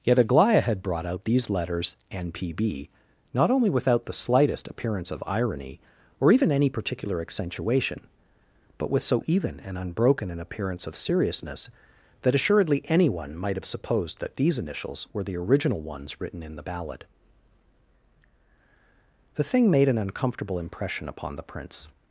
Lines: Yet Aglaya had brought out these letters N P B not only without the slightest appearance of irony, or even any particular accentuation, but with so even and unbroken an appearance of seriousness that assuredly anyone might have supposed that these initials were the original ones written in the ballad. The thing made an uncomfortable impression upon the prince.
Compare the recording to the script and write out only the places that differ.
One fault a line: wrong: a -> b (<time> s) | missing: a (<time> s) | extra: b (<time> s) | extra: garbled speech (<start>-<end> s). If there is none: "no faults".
no faults